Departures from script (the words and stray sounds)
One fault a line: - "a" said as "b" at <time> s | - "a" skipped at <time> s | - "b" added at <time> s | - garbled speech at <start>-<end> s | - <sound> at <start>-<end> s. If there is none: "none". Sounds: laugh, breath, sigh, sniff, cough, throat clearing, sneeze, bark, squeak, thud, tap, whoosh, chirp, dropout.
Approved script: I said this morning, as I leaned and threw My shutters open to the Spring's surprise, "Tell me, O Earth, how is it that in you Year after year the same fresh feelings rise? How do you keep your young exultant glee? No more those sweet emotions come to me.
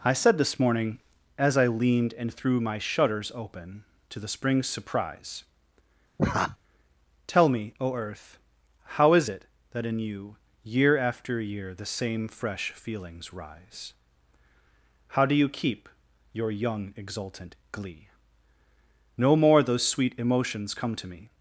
- laugh at 6.2-6.6 s